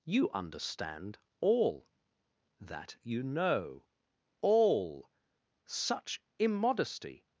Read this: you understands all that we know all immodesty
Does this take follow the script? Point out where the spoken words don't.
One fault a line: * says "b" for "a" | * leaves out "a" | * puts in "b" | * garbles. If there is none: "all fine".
* says "understand" for "understands"
* says "you" for "we"
* puts in "such"